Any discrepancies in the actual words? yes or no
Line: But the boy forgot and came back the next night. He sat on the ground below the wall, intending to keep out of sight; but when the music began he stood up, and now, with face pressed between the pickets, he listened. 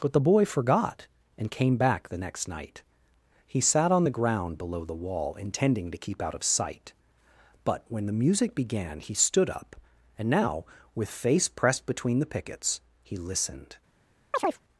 no